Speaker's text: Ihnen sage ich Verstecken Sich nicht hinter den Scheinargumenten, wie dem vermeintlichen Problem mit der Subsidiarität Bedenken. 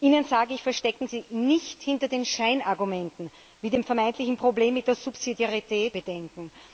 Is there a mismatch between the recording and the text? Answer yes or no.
no